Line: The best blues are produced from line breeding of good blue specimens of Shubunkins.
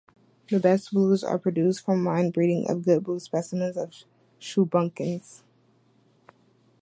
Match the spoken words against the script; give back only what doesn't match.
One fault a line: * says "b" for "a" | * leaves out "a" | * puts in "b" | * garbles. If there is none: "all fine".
all fine